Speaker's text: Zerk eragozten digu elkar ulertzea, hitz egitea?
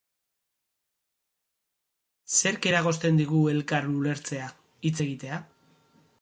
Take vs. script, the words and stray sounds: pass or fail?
pass